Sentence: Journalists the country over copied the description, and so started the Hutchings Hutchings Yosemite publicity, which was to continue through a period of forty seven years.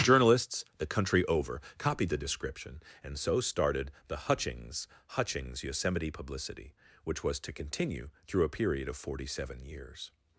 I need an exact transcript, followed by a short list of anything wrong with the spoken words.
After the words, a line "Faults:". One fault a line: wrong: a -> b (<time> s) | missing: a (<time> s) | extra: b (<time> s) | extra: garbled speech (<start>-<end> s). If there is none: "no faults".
Journalists the country over copied the description, and so started the Hutchings Hutchings Yosemite publicity, which was to continue through a period of forty seven years.
Faults:
no faults